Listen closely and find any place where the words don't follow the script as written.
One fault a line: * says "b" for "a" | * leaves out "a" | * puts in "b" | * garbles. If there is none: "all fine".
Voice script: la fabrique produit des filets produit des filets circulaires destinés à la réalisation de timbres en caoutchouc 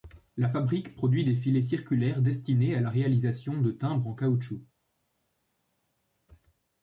* leaves out "produit des filets"